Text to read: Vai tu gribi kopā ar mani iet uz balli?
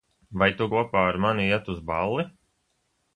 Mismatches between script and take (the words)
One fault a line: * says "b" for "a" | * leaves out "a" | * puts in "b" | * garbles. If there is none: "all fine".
* leaves out "gribi"